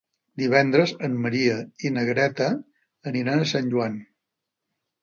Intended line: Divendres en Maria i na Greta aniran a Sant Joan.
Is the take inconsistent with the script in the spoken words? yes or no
no